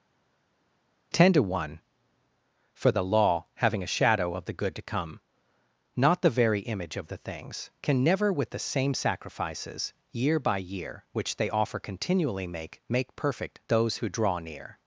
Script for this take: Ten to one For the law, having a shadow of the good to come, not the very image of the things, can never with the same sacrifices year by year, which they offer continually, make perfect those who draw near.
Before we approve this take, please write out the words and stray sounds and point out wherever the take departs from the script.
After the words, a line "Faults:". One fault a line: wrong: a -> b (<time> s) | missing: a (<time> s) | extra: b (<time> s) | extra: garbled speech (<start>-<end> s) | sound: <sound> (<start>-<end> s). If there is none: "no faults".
Ten to one For the law, having a shadow of the good to come, not the very image of the things, can never with the same sacrifices year by year, which they offer continually, make make perfect those who draw near.
Faults:
extra: make (12.9 s)